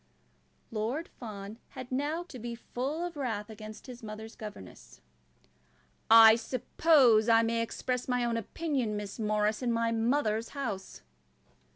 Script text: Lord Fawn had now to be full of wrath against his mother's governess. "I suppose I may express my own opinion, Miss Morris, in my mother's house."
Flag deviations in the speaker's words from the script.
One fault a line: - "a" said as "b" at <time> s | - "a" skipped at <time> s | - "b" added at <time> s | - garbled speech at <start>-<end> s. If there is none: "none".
none